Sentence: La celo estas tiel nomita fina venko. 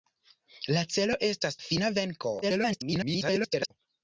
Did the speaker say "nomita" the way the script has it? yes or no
no